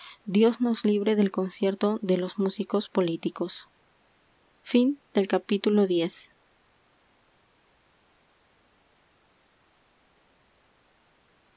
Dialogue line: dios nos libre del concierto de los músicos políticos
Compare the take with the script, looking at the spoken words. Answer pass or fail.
pass